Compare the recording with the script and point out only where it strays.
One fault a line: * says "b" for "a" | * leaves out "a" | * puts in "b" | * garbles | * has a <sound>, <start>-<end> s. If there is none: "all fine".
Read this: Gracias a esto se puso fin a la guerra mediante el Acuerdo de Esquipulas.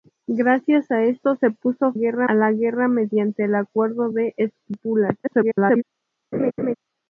* says "guerra" for "fin"
* garbles
* has a laugh, 6.3-6.7 s